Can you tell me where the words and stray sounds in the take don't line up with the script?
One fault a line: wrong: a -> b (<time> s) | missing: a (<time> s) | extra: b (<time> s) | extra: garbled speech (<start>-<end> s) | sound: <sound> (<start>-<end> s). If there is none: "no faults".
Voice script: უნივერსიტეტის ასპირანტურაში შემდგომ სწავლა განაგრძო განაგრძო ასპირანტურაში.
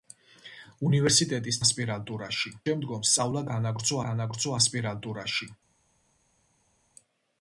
no faults